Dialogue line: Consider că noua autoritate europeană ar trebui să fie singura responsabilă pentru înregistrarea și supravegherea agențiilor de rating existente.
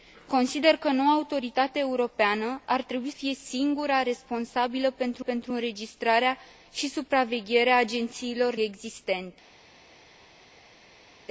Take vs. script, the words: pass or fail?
fail